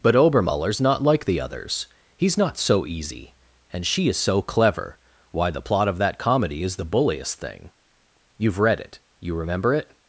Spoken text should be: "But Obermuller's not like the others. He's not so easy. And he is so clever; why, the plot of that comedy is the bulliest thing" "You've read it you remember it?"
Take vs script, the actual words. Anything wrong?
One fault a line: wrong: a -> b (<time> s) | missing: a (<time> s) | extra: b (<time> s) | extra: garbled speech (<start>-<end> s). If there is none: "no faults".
wrong: he -> she (3.9 s)